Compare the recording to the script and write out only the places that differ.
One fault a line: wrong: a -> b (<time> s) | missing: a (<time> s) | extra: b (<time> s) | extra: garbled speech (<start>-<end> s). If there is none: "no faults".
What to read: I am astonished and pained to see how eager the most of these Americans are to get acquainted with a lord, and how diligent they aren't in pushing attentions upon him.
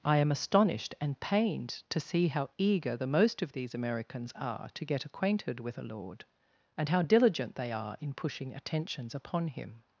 wrong: aren't -> are (7.7 s)